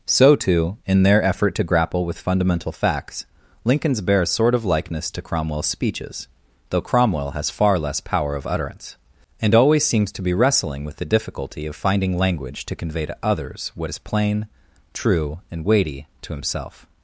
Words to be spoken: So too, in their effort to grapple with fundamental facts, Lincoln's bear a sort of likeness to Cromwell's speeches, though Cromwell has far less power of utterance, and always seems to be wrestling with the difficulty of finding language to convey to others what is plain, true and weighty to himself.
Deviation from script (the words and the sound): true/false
false